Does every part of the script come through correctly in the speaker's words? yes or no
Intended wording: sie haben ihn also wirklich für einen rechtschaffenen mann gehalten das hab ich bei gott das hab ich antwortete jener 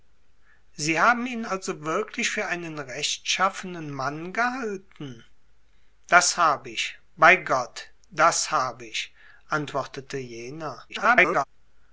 no